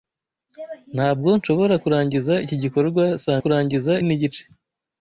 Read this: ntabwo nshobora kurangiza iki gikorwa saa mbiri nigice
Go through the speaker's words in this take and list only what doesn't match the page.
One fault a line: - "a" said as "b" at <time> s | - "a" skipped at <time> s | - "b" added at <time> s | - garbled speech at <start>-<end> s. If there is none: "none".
- "mbiri" said as "kurangiza" at 3.4 s